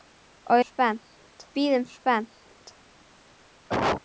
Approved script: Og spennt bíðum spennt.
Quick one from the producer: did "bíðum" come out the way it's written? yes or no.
yes